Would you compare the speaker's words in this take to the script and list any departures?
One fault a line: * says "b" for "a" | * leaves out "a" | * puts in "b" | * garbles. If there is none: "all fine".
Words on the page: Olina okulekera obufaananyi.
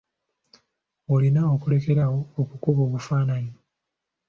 * puts in "awo okukuba"